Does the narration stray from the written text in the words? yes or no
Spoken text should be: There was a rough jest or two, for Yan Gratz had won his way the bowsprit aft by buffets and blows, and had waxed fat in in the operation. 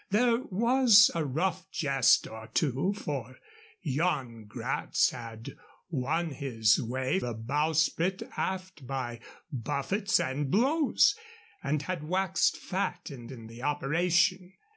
no